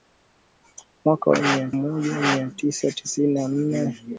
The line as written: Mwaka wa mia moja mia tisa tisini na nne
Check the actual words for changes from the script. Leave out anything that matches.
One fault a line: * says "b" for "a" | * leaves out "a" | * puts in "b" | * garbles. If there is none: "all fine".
all fine